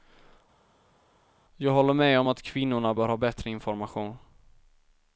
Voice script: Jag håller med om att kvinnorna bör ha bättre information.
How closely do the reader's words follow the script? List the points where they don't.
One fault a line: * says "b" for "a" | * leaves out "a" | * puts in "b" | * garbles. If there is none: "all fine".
all fine